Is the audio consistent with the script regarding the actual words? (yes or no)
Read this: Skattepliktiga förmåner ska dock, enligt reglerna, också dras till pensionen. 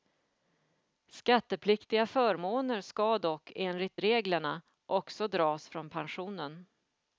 no